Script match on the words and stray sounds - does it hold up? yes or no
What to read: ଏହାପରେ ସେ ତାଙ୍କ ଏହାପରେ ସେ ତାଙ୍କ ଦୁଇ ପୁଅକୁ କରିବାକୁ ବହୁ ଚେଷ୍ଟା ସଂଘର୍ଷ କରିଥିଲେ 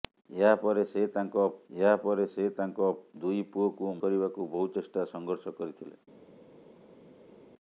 yes